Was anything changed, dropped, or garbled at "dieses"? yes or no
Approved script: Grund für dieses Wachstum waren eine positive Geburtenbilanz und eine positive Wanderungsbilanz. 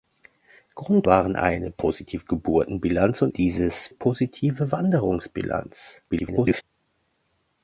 yes